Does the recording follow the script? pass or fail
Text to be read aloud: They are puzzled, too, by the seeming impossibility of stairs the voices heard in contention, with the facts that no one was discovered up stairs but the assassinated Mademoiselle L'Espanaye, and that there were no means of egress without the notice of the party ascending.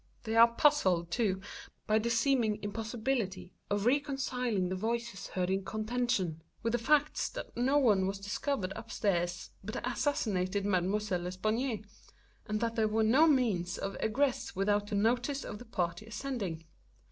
fail